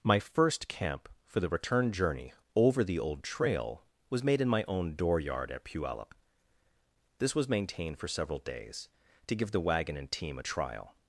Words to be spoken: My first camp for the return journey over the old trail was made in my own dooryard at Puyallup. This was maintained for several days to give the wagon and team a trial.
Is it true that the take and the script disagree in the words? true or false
false